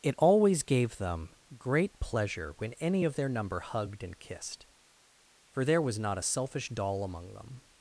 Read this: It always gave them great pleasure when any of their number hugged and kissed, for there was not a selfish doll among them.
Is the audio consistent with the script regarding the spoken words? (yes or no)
yes